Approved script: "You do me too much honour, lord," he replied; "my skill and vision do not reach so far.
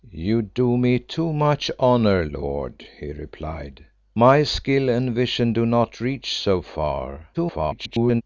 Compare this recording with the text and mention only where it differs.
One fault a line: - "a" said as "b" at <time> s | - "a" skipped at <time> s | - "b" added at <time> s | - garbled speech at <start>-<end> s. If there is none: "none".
- garbled speech at 7.3-8.2 s